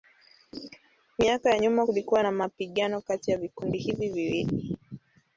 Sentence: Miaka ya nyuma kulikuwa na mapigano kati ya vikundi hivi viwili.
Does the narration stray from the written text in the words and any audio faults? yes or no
no